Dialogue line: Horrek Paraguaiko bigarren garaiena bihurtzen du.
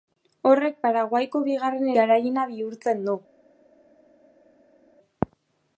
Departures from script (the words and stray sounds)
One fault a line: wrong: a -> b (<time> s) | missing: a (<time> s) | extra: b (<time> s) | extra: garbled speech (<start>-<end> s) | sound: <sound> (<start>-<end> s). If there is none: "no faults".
no faults